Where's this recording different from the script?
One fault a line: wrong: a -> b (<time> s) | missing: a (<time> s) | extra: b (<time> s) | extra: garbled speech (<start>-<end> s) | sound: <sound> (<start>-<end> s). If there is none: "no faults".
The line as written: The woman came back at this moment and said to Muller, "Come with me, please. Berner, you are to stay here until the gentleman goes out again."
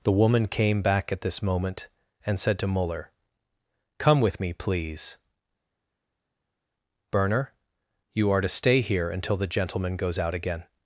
no faults